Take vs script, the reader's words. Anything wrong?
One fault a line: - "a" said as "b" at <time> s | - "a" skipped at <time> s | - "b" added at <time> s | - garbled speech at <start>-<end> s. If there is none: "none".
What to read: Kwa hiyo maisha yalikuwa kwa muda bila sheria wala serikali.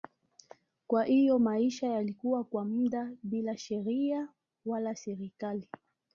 none